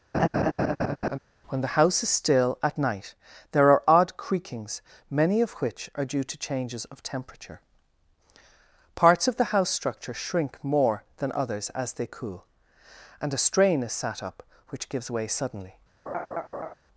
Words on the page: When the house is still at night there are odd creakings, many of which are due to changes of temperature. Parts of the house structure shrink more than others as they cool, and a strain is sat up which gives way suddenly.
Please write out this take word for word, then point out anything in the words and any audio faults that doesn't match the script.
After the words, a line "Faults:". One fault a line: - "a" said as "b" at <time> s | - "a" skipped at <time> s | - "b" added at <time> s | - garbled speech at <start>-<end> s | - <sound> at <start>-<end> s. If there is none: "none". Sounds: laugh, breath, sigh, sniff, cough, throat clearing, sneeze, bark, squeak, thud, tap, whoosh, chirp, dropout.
When the house is still at night there are odd creakings, many of which are due to changes of temperature. Parts of the house structure shrink more than others as they cool, and a strain is sat up which gives way suddenly.
Faults:
- laugh at 0.1-1.2 s
- laugh at 16.1-16.7 s